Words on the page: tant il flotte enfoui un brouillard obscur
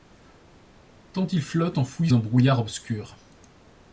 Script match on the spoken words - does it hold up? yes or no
yes